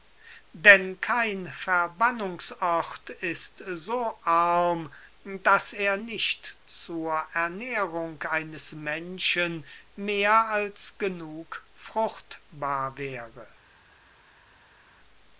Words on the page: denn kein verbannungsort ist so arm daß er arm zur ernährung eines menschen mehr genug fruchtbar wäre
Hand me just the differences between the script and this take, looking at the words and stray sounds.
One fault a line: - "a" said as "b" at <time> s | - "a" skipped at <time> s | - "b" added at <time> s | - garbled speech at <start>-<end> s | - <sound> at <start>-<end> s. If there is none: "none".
- "arm" said as "nicht" at 5.9 s
- "als" added at 10.5 s